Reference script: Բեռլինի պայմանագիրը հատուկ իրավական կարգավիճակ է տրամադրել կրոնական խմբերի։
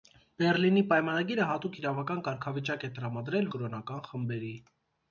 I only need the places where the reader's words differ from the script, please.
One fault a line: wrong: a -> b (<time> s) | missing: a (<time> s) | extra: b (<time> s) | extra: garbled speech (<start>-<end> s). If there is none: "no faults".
no faults